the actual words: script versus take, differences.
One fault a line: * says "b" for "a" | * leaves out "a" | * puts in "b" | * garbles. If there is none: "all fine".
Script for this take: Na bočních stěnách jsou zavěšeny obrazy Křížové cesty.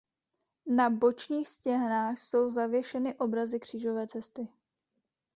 all fine